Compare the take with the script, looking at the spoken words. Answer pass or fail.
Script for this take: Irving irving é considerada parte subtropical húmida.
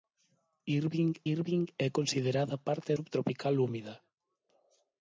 pass